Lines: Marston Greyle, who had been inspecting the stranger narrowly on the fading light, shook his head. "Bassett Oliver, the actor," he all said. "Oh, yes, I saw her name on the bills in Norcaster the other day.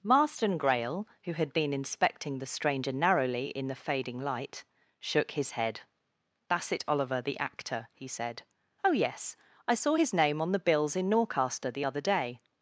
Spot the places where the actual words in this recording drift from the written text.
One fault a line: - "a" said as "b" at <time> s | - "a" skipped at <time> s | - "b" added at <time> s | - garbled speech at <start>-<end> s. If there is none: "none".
- "on" said as "in" at 3.5 s
- "all" skipped at 8.1 s
- "her" said as "his" at 9.9 s